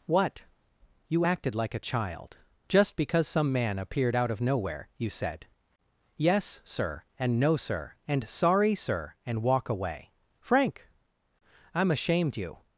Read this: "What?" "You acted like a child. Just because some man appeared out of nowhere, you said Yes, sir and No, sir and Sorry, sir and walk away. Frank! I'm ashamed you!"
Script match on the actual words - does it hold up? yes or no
yes